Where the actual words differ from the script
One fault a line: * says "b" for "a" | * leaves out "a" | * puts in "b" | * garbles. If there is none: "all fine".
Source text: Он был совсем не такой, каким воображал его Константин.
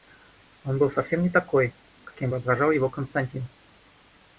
all fine